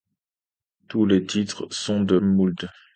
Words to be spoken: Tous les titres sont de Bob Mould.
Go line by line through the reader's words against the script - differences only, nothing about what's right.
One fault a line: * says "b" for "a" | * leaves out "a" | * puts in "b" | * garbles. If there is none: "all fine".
* leaves out "Bob"